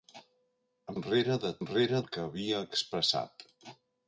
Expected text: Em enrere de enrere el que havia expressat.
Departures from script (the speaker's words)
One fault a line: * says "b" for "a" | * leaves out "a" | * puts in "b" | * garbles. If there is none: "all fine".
all fine